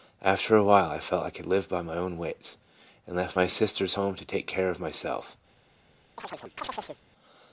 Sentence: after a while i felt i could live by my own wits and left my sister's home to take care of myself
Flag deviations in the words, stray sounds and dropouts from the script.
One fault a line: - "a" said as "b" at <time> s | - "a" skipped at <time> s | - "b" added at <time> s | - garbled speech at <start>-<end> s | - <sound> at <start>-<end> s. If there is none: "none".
- chirp at 6.2-7.0 s